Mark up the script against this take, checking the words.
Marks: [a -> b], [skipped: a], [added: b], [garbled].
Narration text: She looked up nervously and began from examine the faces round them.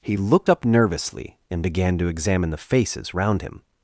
[She -> He] looked up nervously and began [from -> to] examine the faces round [them. -> him]